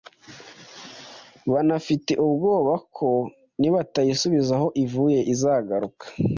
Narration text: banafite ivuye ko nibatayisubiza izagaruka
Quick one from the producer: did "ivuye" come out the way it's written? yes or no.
no